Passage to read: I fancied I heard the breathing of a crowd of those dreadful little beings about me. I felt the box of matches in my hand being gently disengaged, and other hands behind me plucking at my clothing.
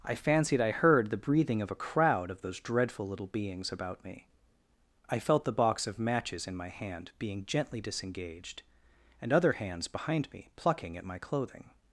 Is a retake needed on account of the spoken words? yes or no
no